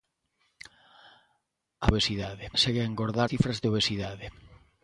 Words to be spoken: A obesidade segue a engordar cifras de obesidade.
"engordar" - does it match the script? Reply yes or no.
yes